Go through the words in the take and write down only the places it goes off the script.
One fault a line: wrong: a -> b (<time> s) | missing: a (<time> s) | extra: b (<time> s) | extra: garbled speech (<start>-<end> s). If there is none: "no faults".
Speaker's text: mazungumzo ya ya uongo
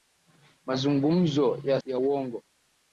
no faults